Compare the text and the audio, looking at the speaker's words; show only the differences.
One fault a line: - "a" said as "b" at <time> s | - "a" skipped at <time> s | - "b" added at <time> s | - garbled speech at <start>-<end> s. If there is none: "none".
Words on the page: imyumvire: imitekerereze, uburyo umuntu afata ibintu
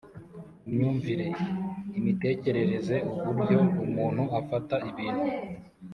none